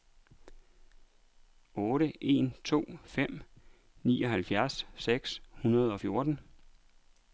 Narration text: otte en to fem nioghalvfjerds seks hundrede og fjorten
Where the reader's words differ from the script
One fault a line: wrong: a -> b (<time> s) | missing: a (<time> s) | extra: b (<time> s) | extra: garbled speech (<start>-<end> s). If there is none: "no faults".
no faults